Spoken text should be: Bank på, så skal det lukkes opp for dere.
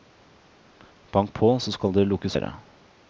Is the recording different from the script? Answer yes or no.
yes